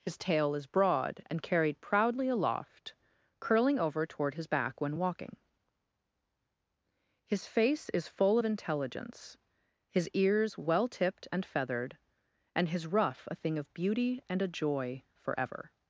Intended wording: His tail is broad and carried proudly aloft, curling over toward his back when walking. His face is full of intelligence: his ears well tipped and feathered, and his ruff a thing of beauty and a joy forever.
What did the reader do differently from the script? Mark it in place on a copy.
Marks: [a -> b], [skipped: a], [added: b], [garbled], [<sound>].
His tail is broad and carried proudly aloft, curling over toward his back when walking. His face is full of intelligence: his ears well tipped and feathered, and his ruff a thing of beauty and a joy forever.